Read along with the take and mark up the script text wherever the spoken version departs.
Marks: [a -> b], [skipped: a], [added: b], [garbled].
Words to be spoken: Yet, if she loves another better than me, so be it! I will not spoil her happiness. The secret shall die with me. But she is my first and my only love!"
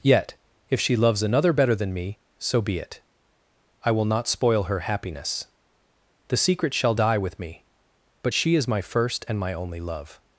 Yet, if she loves another better than me, so be it! I will not spoil her happiness. The secret shall die with me. But she is my first and my only love!"